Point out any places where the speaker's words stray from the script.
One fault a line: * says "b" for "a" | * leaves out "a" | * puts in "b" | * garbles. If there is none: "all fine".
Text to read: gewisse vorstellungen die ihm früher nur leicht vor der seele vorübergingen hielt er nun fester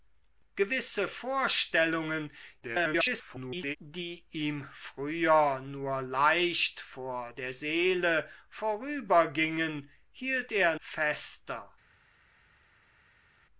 * garbles
* leaves out "nun"